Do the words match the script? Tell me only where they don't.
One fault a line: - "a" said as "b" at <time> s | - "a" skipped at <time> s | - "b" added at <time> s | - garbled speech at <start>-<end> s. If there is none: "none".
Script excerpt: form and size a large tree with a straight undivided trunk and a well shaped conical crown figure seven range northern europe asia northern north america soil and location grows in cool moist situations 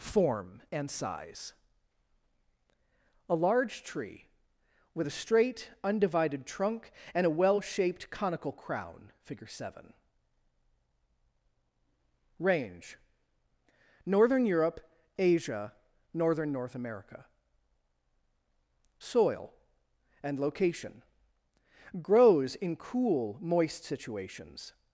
none